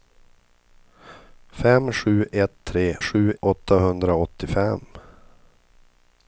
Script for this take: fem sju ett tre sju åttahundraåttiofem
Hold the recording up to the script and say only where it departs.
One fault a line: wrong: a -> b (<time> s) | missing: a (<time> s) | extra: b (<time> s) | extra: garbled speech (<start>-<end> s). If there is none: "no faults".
no faults